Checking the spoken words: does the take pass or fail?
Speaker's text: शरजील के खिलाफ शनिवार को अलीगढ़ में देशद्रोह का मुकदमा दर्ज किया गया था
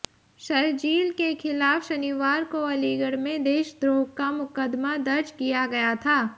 pass